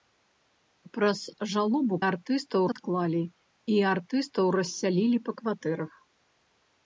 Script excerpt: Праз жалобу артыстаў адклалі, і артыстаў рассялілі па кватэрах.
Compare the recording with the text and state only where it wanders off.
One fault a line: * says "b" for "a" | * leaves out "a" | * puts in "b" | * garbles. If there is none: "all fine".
all fine